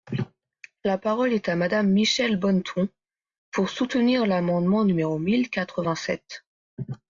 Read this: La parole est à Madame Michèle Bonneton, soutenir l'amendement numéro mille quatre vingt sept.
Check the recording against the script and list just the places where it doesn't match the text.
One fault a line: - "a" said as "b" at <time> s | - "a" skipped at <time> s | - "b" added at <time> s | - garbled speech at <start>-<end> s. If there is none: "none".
- "pour" added at 3.5 s